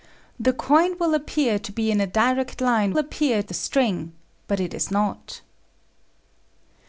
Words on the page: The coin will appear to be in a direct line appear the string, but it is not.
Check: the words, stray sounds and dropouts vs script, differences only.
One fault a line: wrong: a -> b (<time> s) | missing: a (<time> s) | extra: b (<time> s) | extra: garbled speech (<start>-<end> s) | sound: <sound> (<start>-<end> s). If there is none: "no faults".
no faults